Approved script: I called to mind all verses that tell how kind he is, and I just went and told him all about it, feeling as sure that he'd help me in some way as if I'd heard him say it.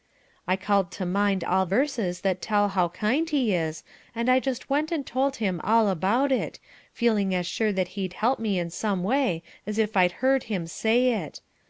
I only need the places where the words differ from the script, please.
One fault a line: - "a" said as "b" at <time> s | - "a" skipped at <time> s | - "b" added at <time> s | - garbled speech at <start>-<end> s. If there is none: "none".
none